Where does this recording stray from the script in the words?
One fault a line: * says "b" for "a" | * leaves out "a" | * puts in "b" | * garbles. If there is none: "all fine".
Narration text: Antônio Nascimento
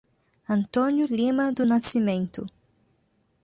* puts in "Lima do"